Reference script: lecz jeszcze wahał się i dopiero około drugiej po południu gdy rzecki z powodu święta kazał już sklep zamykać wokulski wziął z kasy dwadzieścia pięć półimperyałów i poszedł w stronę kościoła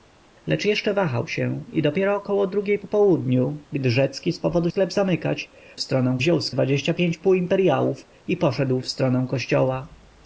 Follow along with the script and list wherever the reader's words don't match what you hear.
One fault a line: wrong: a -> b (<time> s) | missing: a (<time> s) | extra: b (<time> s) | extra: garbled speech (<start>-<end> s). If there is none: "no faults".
missing: święta kazał już (4.7 s)
wrong: wokulski -> stronę (5.8 s)
missing: kasy (6.5 s)